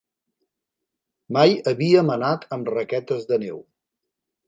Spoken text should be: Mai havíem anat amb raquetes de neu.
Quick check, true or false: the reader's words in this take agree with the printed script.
true